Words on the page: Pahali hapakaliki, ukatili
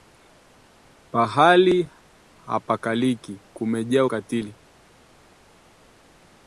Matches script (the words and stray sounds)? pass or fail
fail